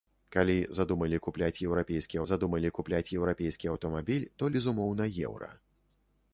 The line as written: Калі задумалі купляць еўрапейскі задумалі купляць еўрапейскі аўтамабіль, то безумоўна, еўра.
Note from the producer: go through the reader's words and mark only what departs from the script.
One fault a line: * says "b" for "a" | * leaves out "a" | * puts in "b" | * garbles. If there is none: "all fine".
all fine